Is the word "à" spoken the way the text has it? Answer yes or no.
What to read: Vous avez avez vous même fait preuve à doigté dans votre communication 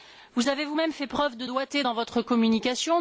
no